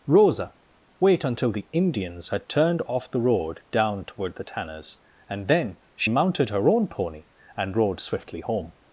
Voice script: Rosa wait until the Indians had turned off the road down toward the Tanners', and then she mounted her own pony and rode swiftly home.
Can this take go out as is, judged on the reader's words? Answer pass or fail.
pass